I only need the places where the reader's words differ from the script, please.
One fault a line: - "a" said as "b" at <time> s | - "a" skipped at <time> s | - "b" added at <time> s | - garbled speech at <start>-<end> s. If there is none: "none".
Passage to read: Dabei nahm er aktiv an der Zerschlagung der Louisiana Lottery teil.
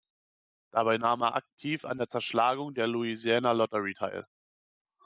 none